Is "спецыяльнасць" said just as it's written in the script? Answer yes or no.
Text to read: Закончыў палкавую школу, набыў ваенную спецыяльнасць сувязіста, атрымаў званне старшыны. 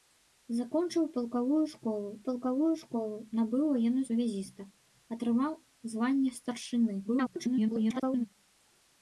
no